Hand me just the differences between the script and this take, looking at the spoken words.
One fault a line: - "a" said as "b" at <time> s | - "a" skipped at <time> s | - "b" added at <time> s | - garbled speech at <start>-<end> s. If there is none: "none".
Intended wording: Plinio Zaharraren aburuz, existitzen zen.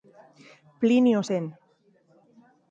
- "Zaharraren aburuz existitzen" skipped at 1.2 s